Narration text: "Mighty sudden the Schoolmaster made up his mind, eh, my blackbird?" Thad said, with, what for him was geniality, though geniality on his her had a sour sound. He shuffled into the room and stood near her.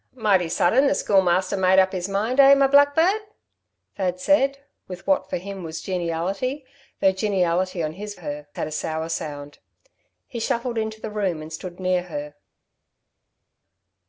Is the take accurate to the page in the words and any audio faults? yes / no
yes